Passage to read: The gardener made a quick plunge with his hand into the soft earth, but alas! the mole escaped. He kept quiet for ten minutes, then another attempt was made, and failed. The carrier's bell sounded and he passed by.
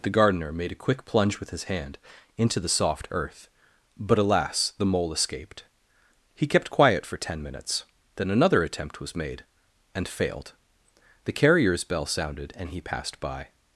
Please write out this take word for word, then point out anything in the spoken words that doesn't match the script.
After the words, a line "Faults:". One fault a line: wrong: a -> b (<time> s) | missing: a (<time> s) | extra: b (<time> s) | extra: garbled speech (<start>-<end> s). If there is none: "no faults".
The gardener made a quick plunge with his hand into the soft earth, but alas! the mole escaped. He kept quiet for ten minutes, then another attempt was made, and failed. The carrier's bell sounded and he passed by.
Faults:
no faults